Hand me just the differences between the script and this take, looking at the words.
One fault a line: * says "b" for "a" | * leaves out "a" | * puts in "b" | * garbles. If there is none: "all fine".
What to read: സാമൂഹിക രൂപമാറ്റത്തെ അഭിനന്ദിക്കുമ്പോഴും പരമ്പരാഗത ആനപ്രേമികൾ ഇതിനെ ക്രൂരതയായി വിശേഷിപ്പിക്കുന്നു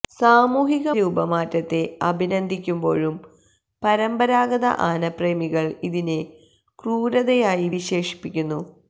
all fine